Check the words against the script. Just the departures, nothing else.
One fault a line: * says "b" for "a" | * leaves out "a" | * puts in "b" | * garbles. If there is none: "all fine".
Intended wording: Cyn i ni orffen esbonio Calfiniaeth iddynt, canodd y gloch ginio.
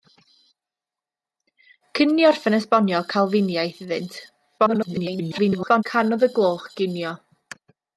* garbles